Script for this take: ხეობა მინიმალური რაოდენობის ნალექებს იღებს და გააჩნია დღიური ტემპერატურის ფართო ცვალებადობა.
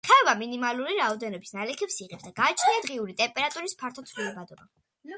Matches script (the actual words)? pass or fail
pass